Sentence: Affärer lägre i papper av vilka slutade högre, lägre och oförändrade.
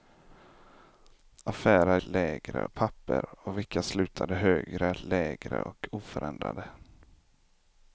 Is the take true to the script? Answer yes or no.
yes